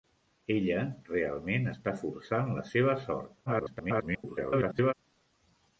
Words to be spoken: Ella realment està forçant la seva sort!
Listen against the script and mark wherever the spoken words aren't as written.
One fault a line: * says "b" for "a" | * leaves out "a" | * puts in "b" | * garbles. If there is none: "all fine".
* garbles